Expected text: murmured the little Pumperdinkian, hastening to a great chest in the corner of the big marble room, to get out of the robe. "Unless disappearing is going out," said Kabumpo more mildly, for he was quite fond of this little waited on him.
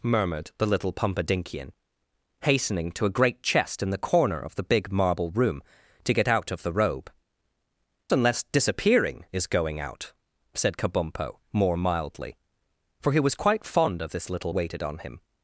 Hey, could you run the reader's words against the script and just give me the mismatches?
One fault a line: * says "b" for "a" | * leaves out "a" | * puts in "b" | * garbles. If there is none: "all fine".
all fine